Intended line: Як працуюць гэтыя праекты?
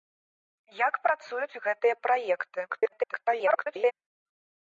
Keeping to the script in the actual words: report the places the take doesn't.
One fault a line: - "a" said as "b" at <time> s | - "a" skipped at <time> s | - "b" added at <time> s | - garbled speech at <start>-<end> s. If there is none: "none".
- garbled speech at 2.7-3.9 s